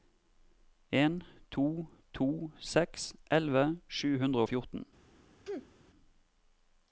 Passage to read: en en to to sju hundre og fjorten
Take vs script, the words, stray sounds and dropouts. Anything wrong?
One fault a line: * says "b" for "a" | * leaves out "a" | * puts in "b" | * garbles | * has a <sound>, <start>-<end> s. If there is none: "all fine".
* says "to" for "en"
* says "seks elleve" for "to"
* has a sneeze, 5.5-5.7 s